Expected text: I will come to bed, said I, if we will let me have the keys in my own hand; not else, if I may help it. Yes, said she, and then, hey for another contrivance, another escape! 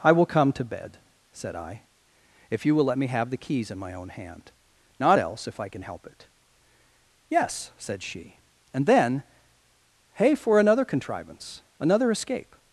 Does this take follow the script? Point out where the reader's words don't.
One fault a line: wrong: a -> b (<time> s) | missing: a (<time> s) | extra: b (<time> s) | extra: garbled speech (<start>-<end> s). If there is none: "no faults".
wrong: we -> you (2.6 s)
wrong: may -> can (5.7 s)